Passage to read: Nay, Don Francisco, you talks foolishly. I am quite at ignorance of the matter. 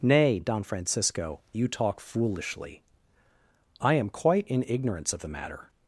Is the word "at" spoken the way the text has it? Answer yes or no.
no